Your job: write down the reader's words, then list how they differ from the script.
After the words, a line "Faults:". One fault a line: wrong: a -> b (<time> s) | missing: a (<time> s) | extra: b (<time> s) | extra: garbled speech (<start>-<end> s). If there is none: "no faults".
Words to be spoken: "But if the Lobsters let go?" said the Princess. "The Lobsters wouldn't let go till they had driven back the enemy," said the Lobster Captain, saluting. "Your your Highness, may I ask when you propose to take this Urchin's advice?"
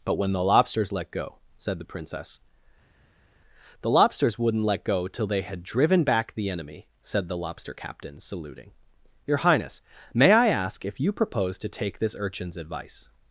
"But when the Lobsters let go?" said the Princess. "The Lobsters wouldn't let go till they had driven back the enemy," said the Lobster Captain, saluting. "Your Highness, may I ask if you propose to take this Urchin's advice?"
Faults:
wrong: if -> when (0.1 s)
missing: your (9.4 s)
wrong: when -> if (10.9 s)